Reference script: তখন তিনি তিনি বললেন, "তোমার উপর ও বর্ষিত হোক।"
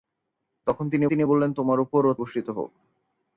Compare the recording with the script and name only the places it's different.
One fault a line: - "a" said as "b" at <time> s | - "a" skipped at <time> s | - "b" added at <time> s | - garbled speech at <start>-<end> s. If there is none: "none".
none